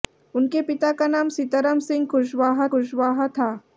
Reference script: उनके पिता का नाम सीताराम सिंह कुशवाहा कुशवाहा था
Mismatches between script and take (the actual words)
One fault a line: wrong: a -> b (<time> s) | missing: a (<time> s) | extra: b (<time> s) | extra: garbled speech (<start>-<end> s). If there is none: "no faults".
no faults